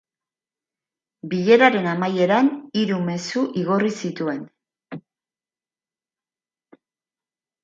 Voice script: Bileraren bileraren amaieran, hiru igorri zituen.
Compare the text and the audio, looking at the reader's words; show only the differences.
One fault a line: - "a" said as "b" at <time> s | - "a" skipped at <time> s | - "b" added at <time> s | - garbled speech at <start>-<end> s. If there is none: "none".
- "bileraren" skipped at 1.9 s
- "mezu" added at 3.1 s